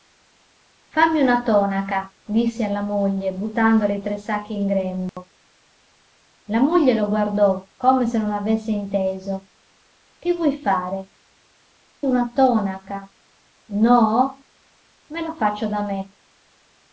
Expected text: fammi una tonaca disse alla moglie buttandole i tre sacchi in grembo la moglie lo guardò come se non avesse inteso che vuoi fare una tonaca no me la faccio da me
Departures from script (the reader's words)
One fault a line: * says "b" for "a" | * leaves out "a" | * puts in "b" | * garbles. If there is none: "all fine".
all fine